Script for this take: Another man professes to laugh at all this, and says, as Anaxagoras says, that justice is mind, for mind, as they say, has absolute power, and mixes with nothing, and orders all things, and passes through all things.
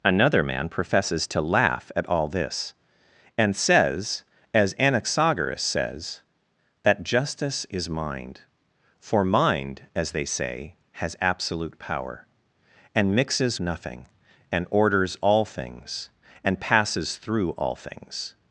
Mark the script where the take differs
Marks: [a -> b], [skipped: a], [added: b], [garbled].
Another man professes to laugh at all this, and says, as Anaxagoras says, that justice is mind, for mind, as they say, has absolute power, and mixes [skipped: with] nothing, and orders all things, and passes through all things.